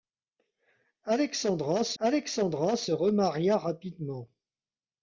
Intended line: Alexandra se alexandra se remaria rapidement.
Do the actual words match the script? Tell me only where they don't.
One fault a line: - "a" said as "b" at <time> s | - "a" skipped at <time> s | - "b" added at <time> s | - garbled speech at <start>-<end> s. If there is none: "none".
none